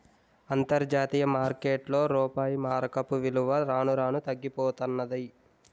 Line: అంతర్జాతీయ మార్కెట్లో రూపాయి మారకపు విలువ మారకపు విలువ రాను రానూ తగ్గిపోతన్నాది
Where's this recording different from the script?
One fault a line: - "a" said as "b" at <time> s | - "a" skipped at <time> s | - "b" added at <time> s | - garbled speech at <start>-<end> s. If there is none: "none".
- "మారకపు విలువ" skipped at 3.6 s